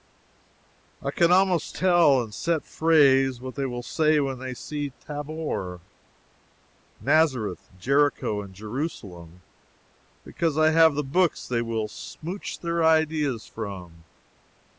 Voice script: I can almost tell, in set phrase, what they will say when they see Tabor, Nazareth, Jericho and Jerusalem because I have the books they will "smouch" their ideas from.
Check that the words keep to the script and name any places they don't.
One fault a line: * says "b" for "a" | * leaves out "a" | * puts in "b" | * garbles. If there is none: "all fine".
all fine